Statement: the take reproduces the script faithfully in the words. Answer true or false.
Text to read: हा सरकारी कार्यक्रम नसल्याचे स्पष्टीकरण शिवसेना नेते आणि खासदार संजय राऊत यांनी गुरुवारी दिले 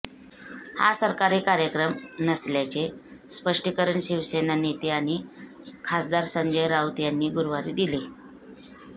true